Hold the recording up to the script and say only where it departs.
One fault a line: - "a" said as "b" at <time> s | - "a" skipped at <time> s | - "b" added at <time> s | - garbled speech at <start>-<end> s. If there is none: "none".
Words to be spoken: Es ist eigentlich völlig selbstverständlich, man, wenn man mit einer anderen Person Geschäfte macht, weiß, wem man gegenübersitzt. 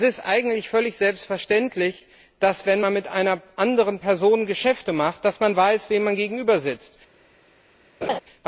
- "dass" added at 2.4 s